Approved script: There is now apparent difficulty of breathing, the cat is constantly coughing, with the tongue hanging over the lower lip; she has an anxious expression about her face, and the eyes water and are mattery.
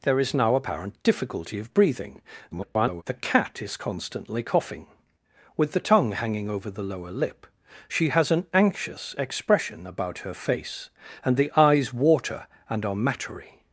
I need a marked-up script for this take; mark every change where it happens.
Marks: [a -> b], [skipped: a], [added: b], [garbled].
There is now apparent difficulty of breathing, [garbled] the cat is constantly coughing, with the tongue hanging over the lower lip; she has an anxious expression about her face, and the eyes water and are mattery.